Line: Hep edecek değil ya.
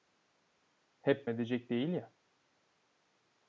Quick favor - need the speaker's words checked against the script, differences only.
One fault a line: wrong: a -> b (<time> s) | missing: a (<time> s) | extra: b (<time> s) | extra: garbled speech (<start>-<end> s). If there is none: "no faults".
no faults